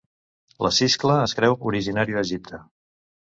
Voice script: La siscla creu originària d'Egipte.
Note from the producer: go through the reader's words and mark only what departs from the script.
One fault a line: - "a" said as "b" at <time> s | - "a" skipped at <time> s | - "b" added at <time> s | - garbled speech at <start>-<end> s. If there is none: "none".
- "es" added at 1.3 s